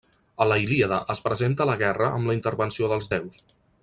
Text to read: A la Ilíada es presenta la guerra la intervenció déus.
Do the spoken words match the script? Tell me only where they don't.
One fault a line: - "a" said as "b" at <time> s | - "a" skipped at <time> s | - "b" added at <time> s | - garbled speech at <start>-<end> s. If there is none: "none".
- "amb" added at 2.2 s
- "dels" added at 2.9 s